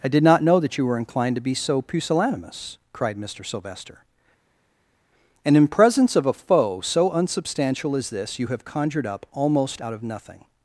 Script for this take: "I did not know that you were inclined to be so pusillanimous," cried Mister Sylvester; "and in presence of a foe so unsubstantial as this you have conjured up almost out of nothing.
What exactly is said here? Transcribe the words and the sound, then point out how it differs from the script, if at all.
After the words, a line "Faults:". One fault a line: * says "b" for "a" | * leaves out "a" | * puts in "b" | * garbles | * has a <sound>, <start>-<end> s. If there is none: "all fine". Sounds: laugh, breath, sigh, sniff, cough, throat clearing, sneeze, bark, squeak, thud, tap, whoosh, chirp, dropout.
"I did not know that you were inclined to be so pusillanimous," cried Mister Sylvester; "and in presence of a foe so unsubstantial as this you have conjured up almost out of nothing.
Faults:
all fine